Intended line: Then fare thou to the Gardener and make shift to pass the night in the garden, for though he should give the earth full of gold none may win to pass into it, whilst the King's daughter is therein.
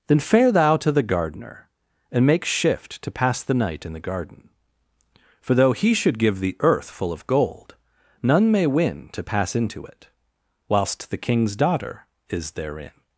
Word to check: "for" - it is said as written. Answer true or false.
true